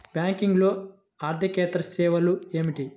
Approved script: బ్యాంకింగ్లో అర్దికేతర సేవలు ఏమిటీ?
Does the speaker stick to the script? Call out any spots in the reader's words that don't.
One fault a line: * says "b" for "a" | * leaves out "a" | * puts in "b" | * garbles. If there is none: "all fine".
all fine